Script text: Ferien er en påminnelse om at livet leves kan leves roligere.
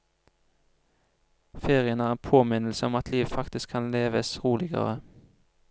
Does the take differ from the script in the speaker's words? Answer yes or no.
yes